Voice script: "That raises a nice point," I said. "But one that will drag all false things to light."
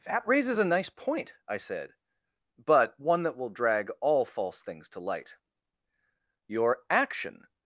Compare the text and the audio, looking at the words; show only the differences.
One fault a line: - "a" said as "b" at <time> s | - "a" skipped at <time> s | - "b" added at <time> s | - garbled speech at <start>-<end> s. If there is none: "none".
- "Your action" added at 6.5 s